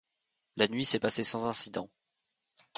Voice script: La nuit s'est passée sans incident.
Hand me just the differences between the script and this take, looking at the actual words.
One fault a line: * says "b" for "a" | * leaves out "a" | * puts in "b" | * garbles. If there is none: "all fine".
all fine